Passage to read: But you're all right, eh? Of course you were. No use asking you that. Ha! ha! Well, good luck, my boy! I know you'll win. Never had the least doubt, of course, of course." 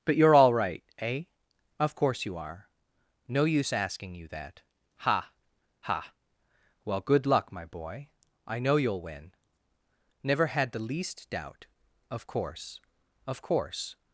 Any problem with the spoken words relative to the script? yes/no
yes